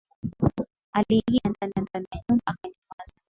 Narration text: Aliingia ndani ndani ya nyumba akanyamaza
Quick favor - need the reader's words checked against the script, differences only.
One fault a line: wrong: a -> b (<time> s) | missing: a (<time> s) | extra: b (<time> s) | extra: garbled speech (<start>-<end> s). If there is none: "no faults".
no faults